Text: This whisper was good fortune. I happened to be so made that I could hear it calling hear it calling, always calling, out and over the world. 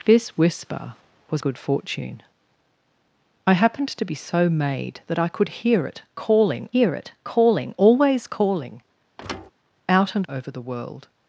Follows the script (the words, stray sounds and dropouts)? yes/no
no